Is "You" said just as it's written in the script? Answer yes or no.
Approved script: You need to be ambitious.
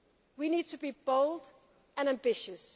no